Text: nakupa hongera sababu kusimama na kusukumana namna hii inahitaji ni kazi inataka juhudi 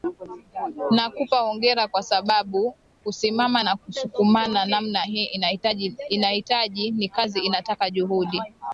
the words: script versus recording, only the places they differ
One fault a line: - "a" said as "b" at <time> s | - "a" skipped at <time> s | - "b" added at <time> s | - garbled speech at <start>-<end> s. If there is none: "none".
- "kwa" added at 1.9 s